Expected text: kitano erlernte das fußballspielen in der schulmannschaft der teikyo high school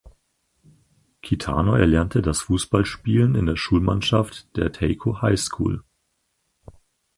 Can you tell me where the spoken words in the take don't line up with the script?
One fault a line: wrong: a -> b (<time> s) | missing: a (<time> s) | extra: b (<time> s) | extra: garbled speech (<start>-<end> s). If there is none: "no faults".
no faults